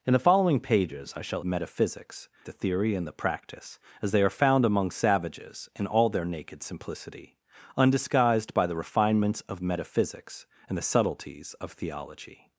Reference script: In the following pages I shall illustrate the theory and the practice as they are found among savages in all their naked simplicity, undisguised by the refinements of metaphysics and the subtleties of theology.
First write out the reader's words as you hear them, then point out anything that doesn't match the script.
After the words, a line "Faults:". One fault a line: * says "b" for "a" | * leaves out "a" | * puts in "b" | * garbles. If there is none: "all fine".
In the following pages I shall metaphysics the theory and the practice as they are found among savages in all their naked simplicity, undisguised by the refinements of metaphysics and the subtleties of theology.
Faults:
* says "metaphysics" for "illustrate"